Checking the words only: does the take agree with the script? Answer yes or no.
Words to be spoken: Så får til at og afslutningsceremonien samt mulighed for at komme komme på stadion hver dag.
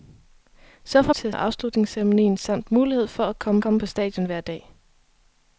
yes